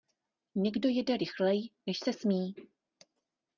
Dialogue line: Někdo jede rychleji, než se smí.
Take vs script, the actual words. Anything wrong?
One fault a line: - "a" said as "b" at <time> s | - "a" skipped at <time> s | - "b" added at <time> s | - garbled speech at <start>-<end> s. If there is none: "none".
none